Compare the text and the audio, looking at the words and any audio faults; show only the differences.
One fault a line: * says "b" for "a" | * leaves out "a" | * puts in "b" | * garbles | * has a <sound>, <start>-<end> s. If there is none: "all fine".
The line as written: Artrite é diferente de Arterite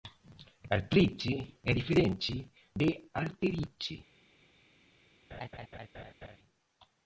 * has a laugh, 5.3-6.4 s